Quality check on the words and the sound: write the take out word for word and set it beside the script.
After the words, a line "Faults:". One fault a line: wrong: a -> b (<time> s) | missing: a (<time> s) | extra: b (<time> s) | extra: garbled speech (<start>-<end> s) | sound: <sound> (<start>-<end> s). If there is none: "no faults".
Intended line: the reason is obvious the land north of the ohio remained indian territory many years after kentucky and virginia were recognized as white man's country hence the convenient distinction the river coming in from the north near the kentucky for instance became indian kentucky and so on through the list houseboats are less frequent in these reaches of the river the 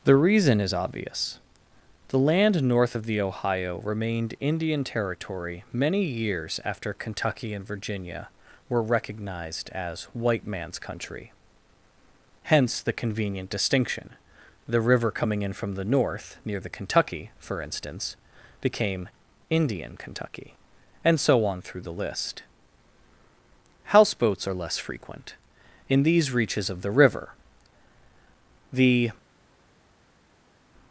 the reason is obvious the land north of the ohio remained indian territory many years after kentucky and virginia were recognized as white man's country hence the convenient distinction the river coming in from the north near the kentucky for instance became indian kentucky and so on through the list houseboats are less frequent in these reaches of the river the
Faults:
no faults